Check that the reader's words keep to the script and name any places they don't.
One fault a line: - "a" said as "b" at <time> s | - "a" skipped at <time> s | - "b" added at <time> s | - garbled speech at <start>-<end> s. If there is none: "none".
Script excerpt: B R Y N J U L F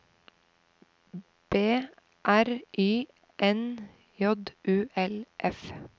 none